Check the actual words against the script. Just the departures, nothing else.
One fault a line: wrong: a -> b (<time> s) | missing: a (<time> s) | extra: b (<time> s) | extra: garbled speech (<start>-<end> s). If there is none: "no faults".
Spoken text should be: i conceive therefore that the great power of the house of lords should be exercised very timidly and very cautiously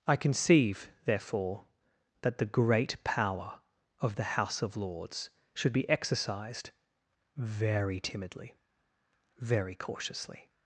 missing: and (8.6 s)